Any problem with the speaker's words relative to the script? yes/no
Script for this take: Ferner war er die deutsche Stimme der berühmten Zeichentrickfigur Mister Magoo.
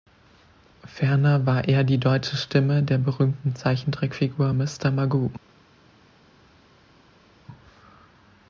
no